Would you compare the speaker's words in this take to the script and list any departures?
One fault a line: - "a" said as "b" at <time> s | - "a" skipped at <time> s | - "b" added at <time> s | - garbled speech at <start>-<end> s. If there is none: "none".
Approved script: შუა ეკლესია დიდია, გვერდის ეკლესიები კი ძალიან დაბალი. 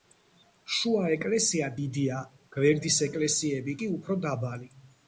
- "ძალიან" said as "უფრო" at 4.0 s